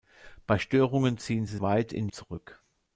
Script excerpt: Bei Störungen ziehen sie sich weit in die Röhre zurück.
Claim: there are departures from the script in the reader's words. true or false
true